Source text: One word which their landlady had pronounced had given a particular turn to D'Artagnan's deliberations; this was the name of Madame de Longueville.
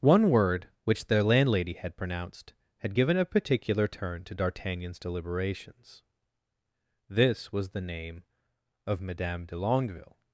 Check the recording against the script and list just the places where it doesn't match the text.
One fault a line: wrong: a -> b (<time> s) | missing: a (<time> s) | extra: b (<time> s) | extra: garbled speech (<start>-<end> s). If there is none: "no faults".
no faults